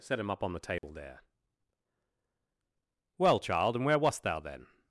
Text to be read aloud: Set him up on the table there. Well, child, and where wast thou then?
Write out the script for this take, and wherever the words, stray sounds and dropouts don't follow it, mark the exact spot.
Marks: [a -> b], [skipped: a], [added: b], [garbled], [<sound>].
Set him up on the table [dropout] there. Well, child, and where wast thou then?